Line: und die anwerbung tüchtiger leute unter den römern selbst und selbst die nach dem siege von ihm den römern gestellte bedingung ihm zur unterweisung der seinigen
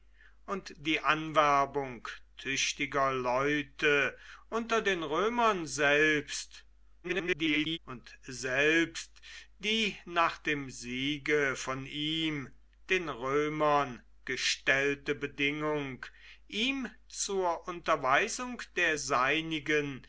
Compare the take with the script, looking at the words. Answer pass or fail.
fail